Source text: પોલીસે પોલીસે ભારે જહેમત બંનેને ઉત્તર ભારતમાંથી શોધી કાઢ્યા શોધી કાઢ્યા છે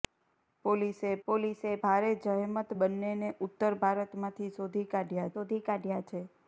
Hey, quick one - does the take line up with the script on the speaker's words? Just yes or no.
yes